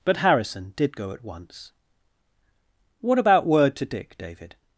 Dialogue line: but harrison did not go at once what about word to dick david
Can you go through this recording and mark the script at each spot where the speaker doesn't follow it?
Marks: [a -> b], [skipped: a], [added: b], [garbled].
but harrison did [skipped: not] go at once what about word to dick david